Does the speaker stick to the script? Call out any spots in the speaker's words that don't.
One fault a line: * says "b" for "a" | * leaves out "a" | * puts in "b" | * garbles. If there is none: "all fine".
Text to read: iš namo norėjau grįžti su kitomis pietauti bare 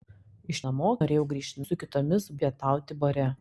all fine